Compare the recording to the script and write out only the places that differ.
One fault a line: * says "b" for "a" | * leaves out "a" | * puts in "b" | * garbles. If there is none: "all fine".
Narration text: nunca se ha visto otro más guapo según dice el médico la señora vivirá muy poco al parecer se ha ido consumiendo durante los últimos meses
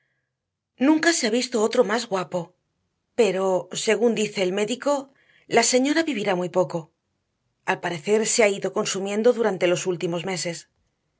* puts in "pero"